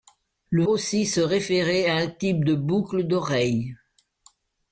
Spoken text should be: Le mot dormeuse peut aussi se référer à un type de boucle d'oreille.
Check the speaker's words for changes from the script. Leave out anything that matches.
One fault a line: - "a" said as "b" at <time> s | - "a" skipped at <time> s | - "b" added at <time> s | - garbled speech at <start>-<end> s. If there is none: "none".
- "mot dormeuse peut" skipped at 0.7 s